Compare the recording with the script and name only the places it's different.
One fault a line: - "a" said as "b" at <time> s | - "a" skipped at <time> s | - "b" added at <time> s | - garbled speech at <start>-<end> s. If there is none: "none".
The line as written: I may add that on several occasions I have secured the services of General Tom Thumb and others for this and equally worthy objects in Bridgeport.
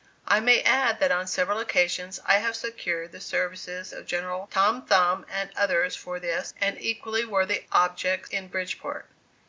none